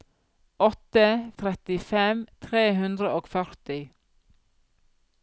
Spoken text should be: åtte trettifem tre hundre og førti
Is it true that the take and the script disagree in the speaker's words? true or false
false